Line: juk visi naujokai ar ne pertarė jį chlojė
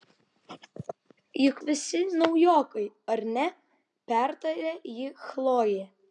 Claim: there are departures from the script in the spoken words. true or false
false